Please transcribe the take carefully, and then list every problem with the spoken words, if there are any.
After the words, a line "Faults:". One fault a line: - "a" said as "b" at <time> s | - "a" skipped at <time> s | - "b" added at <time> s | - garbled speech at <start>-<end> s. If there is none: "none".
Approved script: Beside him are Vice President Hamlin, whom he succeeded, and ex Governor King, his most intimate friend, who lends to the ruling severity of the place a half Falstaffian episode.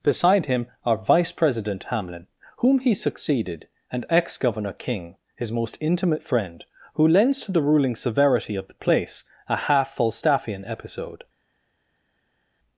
Beside him are Vice President Hamlin, whom he succeeded, and ex Governor King, his most intimate friend, who lends to the ruling severity of the place a half Falstaffian episode.
Faults:
none